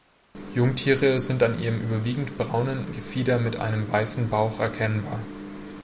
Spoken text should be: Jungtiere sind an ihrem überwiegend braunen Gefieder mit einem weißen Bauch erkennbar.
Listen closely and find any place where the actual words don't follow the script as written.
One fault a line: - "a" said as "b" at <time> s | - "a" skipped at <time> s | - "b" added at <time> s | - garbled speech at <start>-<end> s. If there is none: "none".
none